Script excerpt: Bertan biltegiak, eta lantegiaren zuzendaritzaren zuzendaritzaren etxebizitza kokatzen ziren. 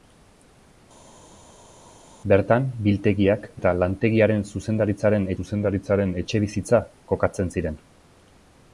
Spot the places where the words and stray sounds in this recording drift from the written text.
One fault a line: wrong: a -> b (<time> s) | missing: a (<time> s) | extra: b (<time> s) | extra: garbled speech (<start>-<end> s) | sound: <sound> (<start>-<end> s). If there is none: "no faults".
no faults